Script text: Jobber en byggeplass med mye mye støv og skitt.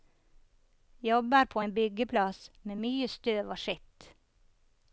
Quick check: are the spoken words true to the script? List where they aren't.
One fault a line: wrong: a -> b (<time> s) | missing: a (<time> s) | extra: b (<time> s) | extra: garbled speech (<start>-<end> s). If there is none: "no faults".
extra: på (1.4 s)
missing: mye (3.1 s)